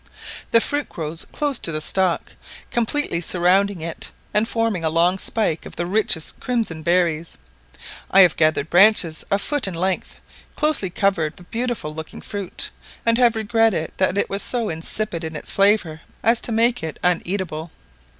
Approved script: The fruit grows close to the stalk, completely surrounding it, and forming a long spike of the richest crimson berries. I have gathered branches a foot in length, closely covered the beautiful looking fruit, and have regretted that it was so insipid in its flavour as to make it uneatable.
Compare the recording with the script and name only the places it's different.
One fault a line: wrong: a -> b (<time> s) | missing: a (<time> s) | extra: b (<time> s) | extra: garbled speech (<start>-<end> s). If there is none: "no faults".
no faults